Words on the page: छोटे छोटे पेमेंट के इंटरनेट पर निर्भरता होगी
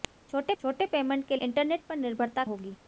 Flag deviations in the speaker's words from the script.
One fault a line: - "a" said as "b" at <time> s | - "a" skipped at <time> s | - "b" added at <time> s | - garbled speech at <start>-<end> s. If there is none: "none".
none